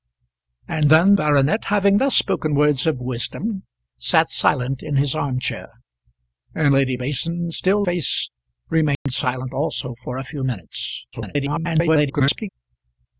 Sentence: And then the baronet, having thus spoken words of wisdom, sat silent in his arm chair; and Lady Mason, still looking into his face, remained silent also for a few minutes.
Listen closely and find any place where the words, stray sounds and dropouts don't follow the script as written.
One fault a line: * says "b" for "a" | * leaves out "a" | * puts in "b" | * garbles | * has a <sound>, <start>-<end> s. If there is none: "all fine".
* leaves out "the"
* leaves out "looking into his"
* has a dropout, 8.9-9.1 s
* garbles